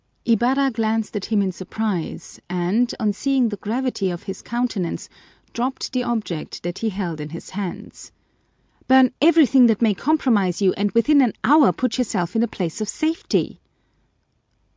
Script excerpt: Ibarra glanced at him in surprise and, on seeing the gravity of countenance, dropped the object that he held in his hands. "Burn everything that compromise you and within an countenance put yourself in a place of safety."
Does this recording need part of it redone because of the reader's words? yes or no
yes